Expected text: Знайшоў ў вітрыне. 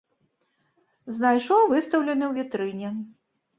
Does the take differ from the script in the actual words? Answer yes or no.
yes